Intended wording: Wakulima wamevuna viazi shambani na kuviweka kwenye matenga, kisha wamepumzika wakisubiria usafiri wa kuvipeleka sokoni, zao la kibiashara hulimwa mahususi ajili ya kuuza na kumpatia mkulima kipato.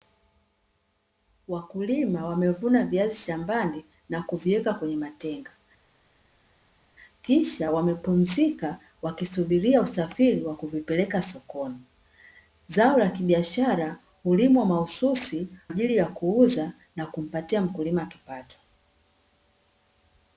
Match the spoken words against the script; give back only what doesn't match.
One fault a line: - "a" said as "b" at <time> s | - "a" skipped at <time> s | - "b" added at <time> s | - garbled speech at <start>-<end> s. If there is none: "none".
none